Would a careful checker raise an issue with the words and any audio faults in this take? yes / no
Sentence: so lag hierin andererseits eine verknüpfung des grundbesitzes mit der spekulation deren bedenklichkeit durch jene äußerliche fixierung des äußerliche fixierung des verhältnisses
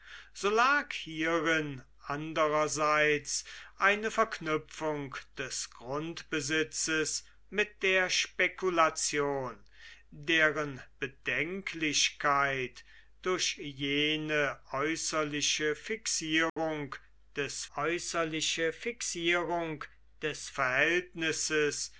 yes